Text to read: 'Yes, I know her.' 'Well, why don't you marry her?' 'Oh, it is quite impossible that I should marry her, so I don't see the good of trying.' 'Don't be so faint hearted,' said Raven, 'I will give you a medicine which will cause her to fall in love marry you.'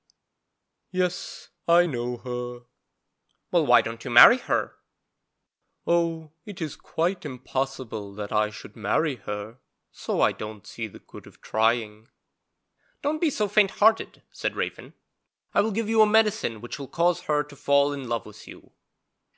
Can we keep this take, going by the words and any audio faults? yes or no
no